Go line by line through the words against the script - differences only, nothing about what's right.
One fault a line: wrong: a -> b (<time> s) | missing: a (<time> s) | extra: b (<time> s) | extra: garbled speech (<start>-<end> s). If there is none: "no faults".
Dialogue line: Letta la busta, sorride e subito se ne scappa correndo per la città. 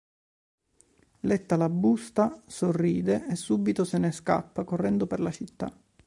no faults